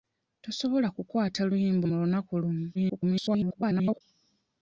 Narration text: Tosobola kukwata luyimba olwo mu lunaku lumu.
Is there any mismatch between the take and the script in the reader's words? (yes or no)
yes